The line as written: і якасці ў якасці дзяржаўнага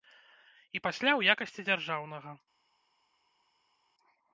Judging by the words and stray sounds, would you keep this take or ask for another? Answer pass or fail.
fail